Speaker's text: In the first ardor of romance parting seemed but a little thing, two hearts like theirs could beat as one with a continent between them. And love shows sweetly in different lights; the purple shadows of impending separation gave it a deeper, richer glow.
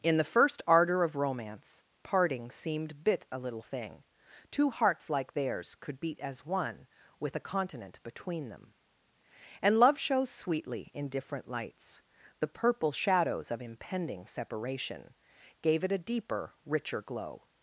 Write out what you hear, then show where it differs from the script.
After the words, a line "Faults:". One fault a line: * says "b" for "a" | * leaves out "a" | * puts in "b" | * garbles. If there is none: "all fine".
In the first ardor of romance parting seemed bit a little thing, two hearts like theirs could beat as one with a continent between them. And love shows sweetly in different lights; the purple shadows of impending separation gave it a deeper, richer glow.
Faults:
* says "bit" for "but"